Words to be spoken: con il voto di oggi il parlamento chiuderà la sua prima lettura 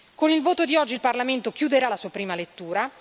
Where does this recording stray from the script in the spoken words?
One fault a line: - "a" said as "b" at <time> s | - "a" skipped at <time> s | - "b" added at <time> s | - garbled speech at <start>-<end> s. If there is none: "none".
none